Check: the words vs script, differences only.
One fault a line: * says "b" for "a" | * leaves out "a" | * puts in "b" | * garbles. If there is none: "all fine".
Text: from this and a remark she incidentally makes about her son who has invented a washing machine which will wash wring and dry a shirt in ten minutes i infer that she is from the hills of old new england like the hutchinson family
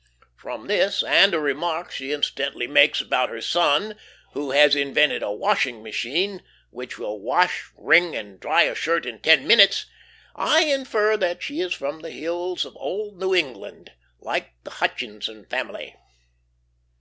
all fine